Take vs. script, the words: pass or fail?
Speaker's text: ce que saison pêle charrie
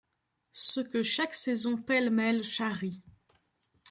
fail